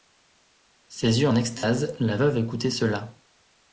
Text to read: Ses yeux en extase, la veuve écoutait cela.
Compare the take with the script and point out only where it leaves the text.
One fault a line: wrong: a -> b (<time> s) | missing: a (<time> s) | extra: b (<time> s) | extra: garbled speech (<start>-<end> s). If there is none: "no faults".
no faults